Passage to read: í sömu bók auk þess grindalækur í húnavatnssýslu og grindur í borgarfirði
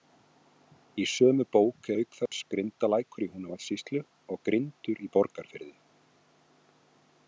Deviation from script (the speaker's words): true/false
false